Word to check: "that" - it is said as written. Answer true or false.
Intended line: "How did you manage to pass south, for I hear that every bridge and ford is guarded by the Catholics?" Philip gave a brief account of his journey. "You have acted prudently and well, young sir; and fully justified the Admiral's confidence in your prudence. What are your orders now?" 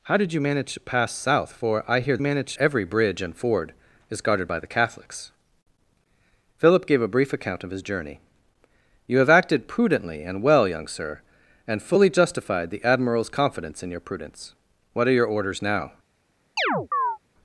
false